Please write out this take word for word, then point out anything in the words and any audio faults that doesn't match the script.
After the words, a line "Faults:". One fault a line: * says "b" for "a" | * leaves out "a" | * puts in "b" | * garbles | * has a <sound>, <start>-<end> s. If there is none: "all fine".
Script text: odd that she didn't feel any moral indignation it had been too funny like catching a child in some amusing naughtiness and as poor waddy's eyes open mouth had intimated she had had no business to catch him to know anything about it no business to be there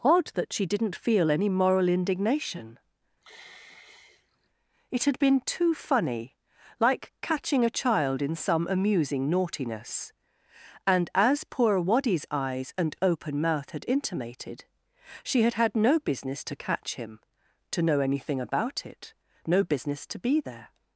odd that she didn't feel any moral indignation it had been too funny like catching a child in some amusing naughtiness and as poor waddy's eyes and open mouth had intimated she had had no business to catch him to know anything about it no business to be there
Faults:
* has a sigh, 3.2-4.5 s
* puts in "and"